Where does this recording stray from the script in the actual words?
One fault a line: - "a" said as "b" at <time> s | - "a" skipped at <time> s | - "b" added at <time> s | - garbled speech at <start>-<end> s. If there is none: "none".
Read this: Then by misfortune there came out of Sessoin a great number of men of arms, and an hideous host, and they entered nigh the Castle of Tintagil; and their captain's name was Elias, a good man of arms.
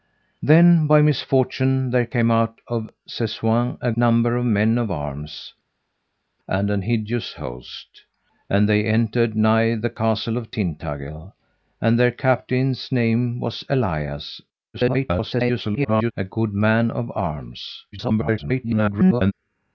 - "great" skipped at 3.9 s
- garbled speech at 14.7-16.1 s
- garbled speech at 17.9-19.3 s